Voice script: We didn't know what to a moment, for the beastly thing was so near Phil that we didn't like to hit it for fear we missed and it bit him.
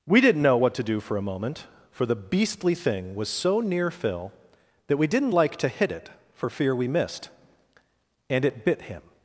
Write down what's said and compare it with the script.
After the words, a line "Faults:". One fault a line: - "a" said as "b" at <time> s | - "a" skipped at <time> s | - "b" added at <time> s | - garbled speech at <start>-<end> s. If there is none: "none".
We didn't know what to do for a moment, for the beastly thing was so near Phil that we didn't like to hit it for fear we missed and it bit him.
Faults:
- "do for" added at 0.8 s